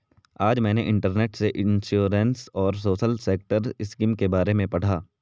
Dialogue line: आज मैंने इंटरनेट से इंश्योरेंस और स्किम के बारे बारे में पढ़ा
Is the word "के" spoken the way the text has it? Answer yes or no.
yes